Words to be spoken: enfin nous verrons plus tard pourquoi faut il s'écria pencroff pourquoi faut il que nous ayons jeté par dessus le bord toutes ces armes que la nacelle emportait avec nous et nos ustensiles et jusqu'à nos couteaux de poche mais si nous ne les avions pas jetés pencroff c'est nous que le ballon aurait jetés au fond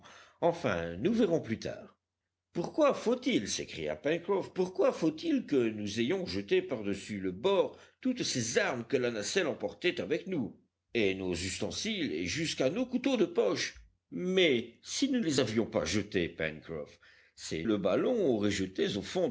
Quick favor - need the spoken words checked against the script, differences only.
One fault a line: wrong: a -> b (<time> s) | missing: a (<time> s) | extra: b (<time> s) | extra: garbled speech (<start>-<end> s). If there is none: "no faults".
missing: ne (15.2 s)
missing: nous que (17.6 s)